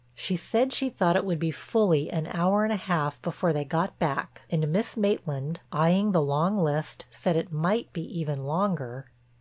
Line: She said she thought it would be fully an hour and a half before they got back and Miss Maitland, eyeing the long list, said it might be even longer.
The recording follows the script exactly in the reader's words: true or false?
true